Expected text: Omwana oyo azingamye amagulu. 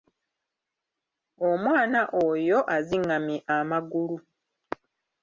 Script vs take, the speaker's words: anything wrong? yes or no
no